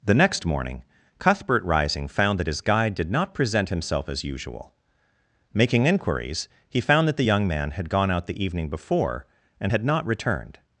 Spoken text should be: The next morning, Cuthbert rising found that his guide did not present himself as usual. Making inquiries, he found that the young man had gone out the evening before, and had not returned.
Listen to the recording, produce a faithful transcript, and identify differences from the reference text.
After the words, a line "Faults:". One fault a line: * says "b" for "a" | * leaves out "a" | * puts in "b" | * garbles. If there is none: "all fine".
The next morning, Cuthbert rising found that his guide did not present himself as usual. Making inquiries, he found that the young man had gone out the evening before, and had not returned.
Faults:
all fine